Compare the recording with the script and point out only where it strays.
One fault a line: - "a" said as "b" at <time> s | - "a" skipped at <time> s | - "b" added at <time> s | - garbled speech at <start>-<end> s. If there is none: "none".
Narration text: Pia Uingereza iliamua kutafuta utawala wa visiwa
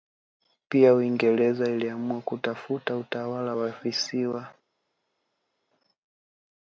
none